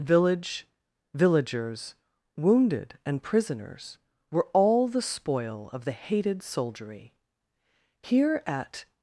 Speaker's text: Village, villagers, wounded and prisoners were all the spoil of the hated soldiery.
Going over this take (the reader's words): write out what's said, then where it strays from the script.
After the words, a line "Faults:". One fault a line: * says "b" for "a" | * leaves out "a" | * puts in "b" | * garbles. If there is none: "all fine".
Village, villagers, wounded and prisoners were all the spoil of the hated soldiery. Here at
Faults:
* puts in "Here at"